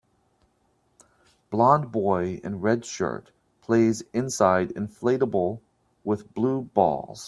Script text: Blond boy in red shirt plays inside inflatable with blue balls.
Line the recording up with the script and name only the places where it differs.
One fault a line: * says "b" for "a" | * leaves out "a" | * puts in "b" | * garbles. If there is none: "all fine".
all fine